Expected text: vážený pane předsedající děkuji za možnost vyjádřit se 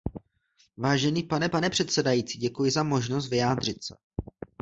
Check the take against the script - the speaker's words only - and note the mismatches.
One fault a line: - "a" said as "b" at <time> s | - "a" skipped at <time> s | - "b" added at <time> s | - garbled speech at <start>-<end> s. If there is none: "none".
- "pane" added at 1.5 s